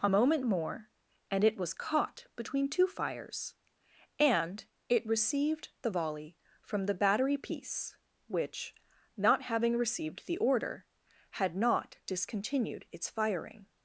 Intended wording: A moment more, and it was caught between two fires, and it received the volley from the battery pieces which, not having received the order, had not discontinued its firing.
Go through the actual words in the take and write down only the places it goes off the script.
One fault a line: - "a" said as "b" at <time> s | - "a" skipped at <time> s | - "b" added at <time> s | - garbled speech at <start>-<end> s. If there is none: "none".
- "pieces" said as "piece" at 7.4 s